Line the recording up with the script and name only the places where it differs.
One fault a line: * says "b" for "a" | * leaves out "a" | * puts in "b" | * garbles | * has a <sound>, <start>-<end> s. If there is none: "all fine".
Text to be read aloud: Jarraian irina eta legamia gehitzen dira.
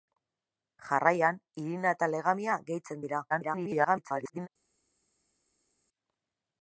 * garbles